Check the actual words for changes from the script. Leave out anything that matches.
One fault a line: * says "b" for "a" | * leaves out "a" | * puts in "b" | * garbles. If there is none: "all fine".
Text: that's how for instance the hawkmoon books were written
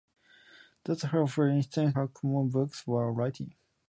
* leaves out "the"